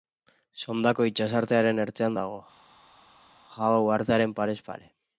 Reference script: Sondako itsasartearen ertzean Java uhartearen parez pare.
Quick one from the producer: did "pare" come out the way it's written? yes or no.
yes